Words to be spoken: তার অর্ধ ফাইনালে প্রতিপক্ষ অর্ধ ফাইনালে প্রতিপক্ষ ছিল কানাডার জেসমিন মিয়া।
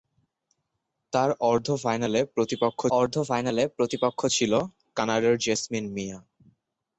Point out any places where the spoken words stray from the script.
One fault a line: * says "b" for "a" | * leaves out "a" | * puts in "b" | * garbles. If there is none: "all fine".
all fine